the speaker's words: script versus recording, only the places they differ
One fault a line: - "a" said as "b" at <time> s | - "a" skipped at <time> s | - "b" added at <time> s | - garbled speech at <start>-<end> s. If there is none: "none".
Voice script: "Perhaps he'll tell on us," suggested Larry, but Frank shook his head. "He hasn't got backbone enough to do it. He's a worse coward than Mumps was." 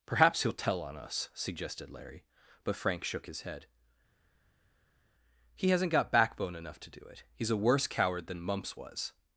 none